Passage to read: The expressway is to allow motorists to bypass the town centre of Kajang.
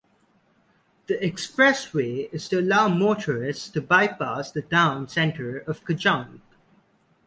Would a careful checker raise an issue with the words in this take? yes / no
no